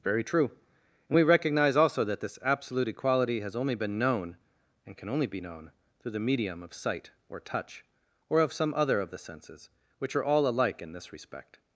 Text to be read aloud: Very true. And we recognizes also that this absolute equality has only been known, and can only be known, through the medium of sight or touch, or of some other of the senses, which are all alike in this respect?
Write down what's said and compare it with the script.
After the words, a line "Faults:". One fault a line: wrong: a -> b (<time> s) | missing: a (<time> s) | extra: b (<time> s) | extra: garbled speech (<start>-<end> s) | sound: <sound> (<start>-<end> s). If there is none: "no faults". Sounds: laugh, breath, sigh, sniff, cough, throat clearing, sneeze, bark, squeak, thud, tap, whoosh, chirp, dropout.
Very true. And we recognize also that this absolute equality has only been known, and can only be known, through the medium of sight or touch, or of some other of the senses, which are all alike in this respect?
Faults:
wrong: recognizes -> recognize (1.2 s)